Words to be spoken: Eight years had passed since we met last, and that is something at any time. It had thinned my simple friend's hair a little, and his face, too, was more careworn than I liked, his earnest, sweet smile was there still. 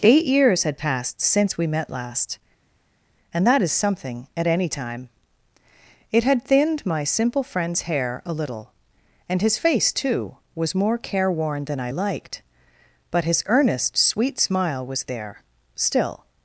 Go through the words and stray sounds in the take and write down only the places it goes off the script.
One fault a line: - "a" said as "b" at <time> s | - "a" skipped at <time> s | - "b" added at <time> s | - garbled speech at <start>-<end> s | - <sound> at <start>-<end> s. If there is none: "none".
- "but" added at 13.1 s